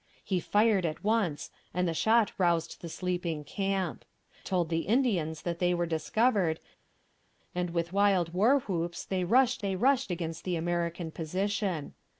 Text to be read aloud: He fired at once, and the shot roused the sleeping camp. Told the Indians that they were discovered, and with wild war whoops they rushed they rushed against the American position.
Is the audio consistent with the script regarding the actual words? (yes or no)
yes